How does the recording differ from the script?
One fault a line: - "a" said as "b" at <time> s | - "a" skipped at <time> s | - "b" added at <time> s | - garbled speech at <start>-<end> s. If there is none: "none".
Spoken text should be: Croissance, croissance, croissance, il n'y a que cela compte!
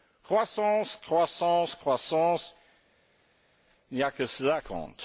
none